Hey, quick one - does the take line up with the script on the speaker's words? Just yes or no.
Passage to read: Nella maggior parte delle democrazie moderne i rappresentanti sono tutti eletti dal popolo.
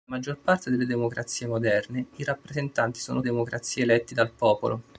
no